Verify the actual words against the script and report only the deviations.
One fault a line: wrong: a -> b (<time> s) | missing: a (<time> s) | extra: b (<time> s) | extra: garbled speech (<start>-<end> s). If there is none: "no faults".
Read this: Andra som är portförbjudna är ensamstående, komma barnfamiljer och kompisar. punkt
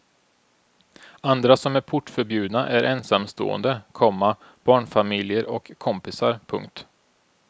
no faults